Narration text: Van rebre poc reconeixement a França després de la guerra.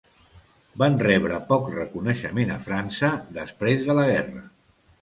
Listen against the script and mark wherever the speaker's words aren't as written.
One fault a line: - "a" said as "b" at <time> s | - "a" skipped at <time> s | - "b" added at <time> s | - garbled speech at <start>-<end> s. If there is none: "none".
none